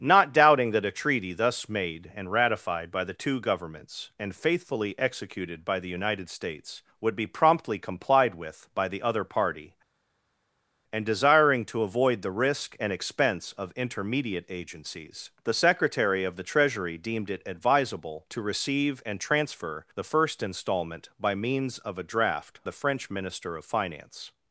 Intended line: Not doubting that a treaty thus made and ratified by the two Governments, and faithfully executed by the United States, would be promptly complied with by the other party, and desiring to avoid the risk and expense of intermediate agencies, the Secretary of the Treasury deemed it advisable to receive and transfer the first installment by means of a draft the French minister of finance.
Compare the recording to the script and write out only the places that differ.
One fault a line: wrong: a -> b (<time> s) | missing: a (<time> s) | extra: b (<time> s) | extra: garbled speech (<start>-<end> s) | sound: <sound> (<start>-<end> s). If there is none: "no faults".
no faults